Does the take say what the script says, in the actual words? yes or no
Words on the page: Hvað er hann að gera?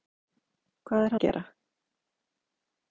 no